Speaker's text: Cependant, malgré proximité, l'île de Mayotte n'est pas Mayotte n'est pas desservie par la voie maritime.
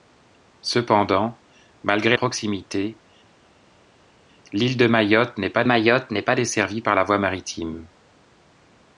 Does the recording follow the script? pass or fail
pass